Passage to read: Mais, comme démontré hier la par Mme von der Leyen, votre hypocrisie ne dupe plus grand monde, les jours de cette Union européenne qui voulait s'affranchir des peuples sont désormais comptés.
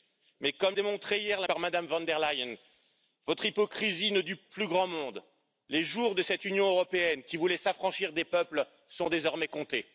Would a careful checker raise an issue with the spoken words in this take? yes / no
no